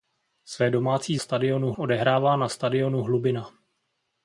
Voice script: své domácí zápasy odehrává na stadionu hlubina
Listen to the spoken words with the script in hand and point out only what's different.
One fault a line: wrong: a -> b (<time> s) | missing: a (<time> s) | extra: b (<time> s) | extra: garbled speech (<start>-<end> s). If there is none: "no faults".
wrong: zápasy -> stadionu (1.2 s)